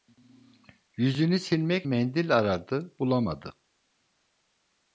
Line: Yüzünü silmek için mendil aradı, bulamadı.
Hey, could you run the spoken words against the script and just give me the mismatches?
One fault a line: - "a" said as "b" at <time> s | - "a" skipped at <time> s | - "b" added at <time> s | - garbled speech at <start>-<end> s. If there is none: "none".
- "için" skipped at 1.9 s